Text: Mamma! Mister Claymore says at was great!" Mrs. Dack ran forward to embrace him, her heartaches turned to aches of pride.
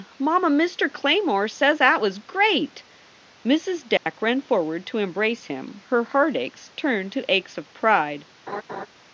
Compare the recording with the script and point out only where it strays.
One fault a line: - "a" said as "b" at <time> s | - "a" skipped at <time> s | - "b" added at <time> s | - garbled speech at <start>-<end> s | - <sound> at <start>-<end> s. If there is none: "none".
- dropout at 4.0-4.1 s
- laugh at 8.5-8.9 s